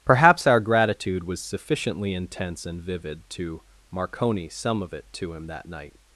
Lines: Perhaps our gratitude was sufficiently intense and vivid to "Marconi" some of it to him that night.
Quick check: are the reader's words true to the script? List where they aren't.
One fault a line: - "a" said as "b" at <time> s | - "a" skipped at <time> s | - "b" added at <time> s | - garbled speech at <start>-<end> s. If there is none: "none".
none